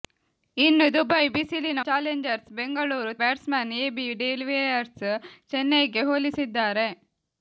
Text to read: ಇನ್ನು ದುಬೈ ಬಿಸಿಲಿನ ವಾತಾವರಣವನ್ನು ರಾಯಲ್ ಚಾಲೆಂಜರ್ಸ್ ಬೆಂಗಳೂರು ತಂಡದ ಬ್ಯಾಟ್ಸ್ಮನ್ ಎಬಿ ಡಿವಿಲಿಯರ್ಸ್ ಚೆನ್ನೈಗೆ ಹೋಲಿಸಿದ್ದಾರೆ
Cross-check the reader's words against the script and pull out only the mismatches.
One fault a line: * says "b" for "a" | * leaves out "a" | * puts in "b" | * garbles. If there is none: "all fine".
* leaves out "ವಾತಾವರಣವನ್ನು ರಾಯಲ್"
* leaves out "ತಂಡದ"